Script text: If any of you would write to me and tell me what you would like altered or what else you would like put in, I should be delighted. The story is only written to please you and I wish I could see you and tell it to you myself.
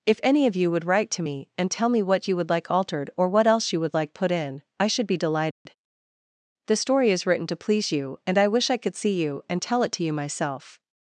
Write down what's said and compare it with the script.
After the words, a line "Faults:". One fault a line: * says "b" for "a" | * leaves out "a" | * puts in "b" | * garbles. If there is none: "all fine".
If any of you would write to me and tell me what you would like altered or what else you would like put in, I should be delighted. The story is written to please you and I wish I could see you and tell it to you myself.
Faults:
* leaves out "only"